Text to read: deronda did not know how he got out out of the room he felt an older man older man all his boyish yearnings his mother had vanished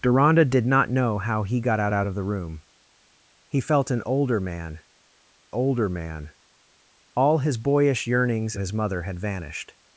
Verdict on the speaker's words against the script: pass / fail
pass